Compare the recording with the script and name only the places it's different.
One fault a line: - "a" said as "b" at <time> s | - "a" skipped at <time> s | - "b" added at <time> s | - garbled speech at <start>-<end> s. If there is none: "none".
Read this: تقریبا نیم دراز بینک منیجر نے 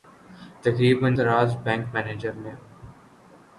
- "نیم" skipped at 1.1 s